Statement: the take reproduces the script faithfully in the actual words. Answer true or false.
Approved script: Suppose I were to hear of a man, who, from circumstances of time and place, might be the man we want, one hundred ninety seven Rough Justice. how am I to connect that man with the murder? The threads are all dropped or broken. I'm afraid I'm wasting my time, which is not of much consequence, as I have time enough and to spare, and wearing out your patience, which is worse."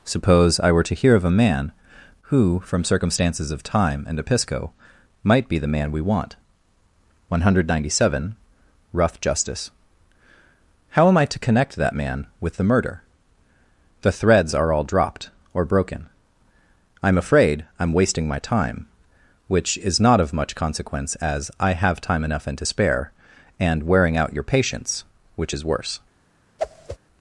false